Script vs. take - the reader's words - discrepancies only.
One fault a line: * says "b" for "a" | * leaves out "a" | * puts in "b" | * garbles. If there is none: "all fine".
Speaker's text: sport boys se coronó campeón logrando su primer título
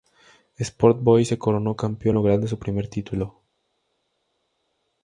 all fine